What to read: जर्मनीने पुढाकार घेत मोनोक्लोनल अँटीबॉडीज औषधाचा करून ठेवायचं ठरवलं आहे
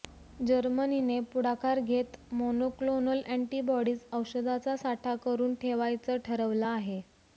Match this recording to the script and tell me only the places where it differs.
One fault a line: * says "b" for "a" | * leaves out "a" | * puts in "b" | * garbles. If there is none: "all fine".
* puts in "साठा"